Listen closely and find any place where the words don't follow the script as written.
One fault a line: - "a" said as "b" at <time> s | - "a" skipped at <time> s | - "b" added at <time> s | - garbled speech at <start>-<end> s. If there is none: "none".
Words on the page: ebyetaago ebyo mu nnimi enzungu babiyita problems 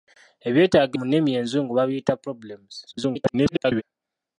- "ebyo" skipped at 0.9 s
- garbled speech at 2.9-3.8 s